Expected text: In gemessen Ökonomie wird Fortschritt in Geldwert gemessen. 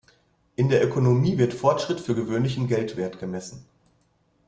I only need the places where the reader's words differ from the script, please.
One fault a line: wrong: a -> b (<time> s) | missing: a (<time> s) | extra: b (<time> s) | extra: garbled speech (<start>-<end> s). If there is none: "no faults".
wrong: gemessen -> der (0.7 s)
extra: für gewöhnlich (2.0 s)